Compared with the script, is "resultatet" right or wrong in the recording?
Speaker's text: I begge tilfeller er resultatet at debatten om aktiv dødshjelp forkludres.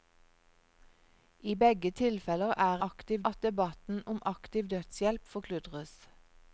wrong